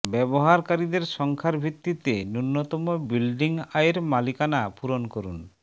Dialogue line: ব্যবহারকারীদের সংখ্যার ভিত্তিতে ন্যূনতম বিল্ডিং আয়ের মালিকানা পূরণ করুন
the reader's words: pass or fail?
pass